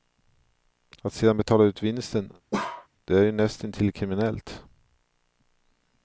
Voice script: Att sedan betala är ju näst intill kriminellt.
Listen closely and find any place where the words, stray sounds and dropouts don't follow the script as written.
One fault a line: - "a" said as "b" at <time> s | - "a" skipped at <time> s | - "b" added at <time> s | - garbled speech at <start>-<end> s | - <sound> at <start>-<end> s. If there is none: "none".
- "ut vinsten det" added at 1.6 s
- bark at 2.5-2.9 s